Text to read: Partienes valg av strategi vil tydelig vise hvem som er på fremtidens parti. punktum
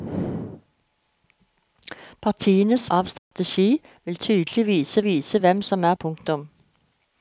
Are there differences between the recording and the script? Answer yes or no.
yes